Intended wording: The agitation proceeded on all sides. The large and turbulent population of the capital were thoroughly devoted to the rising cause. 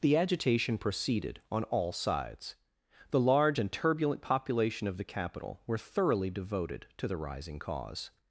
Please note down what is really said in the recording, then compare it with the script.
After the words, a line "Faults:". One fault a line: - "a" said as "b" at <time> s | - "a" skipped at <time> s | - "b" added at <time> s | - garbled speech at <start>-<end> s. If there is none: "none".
The agitation proceeded on all sides. The large and turbulent population of the capital were thoroughly devoted to the rising cause.
Faults:
none